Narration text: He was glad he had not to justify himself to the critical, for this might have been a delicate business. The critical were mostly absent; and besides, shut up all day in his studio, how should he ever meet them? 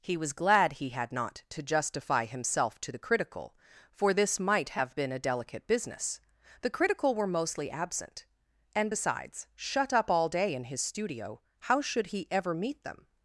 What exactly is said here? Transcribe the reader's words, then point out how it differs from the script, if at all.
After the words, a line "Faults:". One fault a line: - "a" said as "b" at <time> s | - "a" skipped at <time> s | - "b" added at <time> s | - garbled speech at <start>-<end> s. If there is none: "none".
He was glad he had not to justify himself to the critical, for this might have been a delicate business. The critical were mostly absent; and besides, shut up all day in his studio, how should he ever meet them?
Faults:
none